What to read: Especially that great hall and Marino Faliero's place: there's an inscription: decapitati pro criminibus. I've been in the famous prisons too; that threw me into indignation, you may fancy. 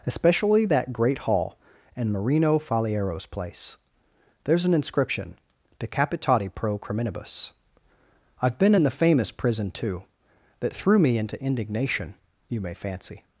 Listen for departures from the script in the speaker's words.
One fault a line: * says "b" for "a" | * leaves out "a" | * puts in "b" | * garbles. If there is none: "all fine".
* says "prison" for "prisons"